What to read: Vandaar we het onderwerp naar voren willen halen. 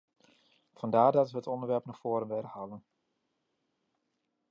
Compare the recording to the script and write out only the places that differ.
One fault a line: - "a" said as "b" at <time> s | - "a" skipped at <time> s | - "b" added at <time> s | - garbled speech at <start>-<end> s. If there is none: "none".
- "dat" added at 1.1 s